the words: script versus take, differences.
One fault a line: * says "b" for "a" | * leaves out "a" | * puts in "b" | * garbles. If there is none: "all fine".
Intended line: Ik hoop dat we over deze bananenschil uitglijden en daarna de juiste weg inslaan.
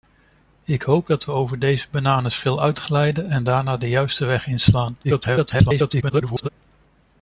* garbles